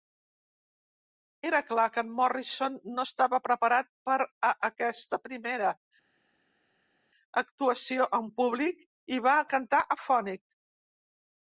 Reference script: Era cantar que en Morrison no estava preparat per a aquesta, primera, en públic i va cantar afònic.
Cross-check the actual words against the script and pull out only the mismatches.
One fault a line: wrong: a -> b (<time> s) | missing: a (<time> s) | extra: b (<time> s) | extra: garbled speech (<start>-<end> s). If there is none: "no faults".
wrong: cantar -> clar (1.7 s)
extra: actuació (7.4 s)